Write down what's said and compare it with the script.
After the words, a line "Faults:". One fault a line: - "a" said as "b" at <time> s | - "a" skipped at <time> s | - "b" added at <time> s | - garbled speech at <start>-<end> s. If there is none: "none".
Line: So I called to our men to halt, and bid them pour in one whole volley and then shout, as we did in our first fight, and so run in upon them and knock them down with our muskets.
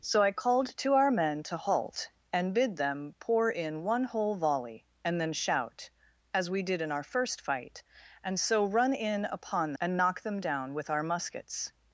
So I called to our men to halt, and bid them pour in one whole volley and then shout, as we did in our first fight, and so run in upon and knock them down with our muskets.
Faults:
- "them" skipped at 9.7 s